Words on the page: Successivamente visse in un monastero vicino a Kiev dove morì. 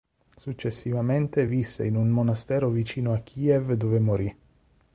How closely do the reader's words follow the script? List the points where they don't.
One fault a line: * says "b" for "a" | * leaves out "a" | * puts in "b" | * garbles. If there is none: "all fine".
all fine